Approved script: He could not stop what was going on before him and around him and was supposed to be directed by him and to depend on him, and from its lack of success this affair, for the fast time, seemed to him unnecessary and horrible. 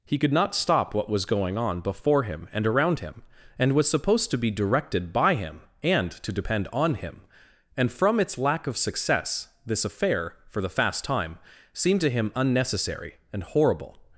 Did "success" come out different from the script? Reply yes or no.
no